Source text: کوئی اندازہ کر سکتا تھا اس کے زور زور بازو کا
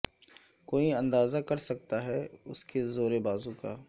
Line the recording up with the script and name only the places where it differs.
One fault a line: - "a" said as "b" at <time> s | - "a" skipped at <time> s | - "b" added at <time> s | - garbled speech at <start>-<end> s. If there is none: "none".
- "تھا" said as "ہے" at 2.0 s
- "زور" skipped at 3.1 s